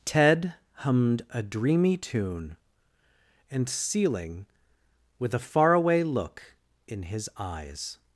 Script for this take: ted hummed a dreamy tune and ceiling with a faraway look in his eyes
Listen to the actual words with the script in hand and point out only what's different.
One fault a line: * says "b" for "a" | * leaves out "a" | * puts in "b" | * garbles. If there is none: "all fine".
all fine